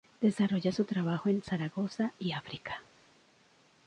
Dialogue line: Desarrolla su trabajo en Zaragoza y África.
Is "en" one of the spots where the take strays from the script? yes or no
no